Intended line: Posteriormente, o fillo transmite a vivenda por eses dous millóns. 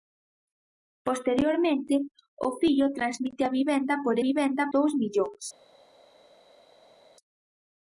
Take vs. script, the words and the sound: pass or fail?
fail